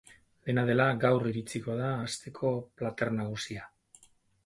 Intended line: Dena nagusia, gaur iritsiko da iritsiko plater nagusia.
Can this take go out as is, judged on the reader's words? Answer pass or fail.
fail